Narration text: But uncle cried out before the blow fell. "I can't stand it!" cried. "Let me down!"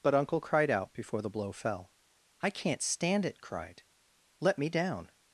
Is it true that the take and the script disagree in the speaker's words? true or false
false